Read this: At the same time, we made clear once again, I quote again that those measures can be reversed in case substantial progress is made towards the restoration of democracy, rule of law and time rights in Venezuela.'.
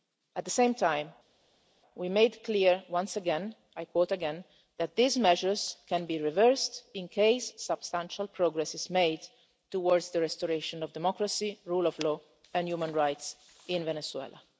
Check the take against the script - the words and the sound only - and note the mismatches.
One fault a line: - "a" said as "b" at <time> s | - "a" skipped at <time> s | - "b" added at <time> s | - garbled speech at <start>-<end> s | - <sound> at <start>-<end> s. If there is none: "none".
- "those" said as "these" at 4.9 s
- "time" said as "human" at 12.7 s